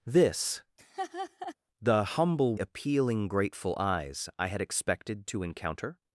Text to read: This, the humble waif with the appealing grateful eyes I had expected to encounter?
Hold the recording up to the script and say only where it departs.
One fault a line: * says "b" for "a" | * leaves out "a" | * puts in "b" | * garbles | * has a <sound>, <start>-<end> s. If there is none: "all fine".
* has a laugh, 0.8-1.5 s
* leaves out "waif with the"